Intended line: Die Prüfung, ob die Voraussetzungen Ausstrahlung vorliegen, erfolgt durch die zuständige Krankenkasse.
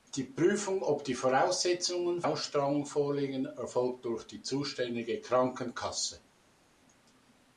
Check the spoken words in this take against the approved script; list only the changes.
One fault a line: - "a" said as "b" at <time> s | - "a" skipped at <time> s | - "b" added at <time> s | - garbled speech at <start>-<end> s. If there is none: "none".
none